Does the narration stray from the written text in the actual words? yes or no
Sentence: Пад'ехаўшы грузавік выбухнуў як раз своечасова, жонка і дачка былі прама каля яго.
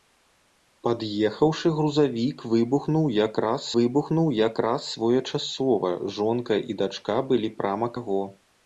yes